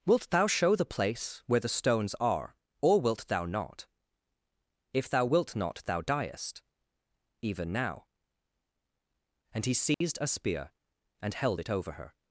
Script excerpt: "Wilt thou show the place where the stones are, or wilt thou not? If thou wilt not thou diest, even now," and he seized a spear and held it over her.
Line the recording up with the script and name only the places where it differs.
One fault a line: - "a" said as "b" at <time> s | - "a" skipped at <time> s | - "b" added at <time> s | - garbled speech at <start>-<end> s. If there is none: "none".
none